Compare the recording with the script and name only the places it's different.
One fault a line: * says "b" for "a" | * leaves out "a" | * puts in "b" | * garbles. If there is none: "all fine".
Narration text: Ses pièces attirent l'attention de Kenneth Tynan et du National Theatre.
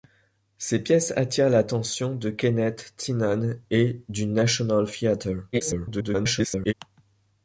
* garbles